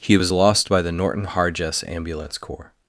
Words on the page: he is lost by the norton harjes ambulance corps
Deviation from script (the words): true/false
true